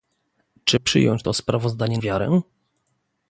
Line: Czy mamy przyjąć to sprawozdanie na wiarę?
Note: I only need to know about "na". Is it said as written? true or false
false